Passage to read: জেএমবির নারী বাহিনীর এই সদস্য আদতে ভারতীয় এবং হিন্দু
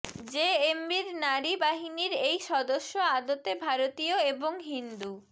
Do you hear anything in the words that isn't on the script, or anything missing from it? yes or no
no